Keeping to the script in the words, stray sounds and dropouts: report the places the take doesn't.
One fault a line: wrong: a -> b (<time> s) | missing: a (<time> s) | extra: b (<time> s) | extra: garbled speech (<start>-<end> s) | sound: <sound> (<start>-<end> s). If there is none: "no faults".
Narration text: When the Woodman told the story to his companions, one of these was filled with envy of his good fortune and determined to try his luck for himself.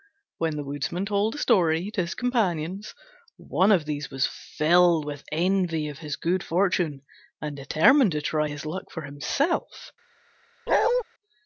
sound: bark (10.7-11.0 s)